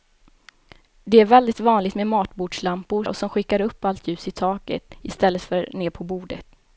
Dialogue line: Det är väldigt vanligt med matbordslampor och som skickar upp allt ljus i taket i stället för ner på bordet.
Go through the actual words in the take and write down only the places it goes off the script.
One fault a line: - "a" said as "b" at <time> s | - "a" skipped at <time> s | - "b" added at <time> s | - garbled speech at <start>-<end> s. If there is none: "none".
none